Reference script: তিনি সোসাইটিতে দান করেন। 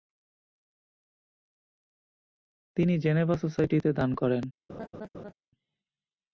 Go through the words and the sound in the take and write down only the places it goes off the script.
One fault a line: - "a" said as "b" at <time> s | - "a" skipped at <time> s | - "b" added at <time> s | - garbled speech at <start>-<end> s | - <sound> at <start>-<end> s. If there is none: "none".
- "জেনেভা" added at 3.0 s
- laugh at 4.7-5.3 s